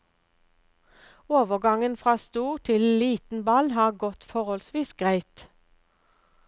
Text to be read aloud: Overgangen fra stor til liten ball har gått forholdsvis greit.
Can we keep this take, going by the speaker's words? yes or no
yes